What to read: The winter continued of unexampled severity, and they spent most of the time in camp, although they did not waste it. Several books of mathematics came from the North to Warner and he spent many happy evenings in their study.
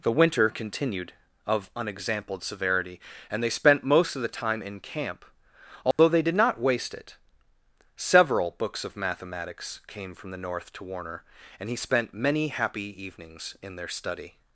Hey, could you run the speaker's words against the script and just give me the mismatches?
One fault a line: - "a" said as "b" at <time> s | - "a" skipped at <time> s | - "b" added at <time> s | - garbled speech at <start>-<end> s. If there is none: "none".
none